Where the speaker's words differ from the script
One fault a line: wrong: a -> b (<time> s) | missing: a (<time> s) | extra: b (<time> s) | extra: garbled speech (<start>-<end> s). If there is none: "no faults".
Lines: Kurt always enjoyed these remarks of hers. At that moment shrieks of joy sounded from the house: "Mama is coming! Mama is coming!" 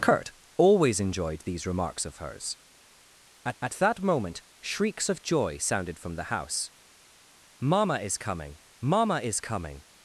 extra: at (3.6 s)